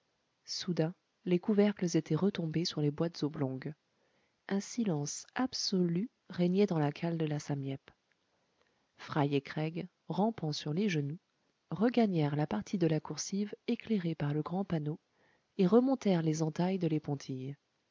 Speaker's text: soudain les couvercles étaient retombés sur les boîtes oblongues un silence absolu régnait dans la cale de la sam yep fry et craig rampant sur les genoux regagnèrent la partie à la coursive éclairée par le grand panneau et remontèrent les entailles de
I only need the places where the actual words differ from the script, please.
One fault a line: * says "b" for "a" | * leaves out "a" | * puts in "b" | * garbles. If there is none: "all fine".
* says "de" for "à"